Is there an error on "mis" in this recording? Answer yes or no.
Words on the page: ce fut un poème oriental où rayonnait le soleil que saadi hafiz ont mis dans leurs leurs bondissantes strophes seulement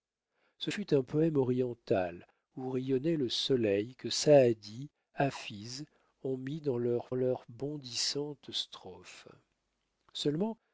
no